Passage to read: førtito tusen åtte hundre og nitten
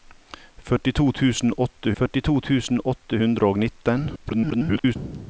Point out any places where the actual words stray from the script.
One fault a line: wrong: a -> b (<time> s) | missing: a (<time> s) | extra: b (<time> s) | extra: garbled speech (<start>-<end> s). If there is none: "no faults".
extra: førtito tusen åtte (2.0 s)
extra: garbled speech (4.2-5.0 s)